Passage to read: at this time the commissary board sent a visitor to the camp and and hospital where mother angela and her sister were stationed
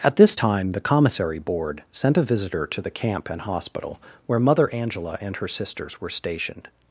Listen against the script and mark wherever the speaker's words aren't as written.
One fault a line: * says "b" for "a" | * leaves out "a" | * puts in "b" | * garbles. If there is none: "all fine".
* leaves out "and"
* says "sisters" for "sister"